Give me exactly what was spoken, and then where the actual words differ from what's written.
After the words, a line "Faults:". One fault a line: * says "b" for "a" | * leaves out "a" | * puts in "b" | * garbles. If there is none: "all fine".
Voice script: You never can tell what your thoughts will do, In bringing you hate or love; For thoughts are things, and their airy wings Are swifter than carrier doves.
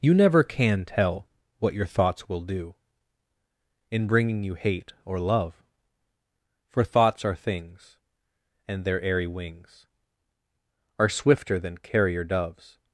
You never can tell what your thoughts will do, In bringing you hate or love; For thoughts are things, and their airy wings Are swifter than carrier doves.
Faults:
all fine